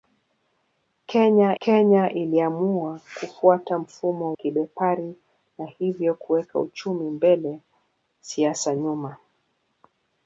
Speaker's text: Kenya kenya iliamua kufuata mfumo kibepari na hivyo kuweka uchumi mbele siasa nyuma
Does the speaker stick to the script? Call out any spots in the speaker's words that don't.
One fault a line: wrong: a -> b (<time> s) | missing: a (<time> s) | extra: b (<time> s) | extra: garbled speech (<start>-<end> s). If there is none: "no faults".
no faults